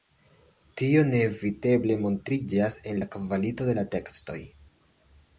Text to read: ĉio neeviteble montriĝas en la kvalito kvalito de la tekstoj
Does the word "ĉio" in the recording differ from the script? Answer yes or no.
yes